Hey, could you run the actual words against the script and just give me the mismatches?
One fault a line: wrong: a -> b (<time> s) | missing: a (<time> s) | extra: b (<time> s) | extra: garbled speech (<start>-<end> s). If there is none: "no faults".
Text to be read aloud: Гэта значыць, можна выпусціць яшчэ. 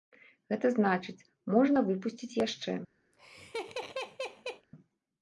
no faults